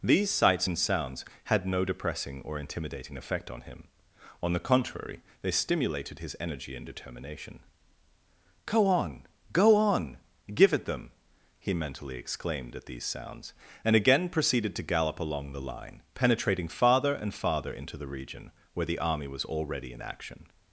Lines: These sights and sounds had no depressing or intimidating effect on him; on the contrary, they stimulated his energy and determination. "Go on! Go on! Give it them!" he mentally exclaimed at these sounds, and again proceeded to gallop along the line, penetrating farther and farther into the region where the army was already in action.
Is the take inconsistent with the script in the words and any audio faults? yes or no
no